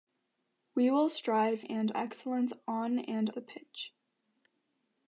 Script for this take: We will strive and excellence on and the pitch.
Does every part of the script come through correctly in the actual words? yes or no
yes